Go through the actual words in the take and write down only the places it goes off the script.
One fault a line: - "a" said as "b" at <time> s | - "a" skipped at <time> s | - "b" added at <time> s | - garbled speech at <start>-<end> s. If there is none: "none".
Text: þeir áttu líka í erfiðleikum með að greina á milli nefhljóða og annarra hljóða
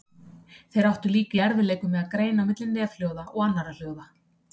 none